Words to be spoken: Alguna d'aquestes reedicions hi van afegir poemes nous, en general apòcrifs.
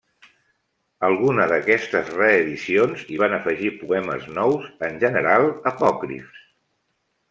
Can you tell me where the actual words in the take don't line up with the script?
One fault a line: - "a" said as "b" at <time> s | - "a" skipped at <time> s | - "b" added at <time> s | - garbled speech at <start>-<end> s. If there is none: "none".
none